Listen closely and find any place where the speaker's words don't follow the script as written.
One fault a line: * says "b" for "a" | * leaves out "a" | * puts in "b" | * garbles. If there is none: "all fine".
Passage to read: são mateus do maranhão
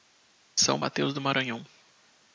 all fine